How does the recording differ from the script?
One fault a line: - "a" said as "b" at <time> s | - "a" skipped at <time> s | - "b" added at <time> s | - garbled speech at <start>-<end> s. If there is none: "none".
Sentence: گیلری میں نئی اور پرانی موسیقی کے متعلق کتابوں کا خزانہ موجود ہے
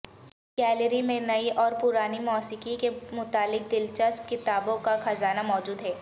- "دلچسپ" added at 3.7 s